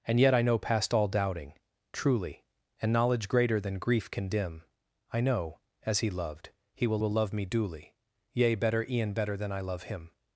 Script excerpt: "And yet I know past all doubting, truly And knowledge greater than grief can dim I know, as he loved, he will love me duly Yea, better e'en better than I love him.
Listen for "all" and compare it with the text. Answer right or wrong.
right